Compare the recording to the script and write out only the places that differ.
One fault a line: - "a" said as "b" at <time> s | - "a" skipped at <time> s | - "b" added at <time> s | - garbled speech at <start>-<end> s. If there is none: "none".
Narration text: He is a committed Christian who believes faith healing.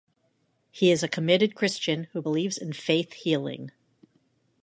- "in" added at 2.6 s